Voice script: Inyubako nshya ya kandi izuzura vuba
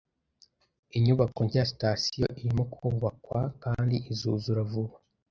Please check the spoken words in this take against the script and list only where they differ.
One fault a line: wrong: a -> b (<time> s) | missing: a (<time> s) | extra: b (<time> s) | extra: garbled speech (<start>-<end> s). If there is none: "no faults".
extra: sitasiyo irimo kubakwa (1.7 s)